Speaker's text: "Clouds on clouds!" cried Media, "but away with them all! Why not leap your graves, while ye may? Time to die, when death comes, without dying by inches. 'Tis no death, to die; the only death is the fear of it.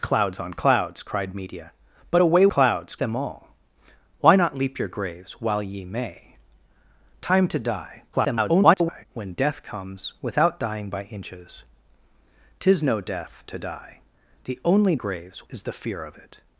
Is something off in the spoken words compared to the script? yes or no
yes